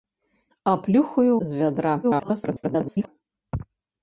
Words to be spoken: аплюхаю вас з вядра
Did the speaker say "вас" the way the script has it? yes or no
no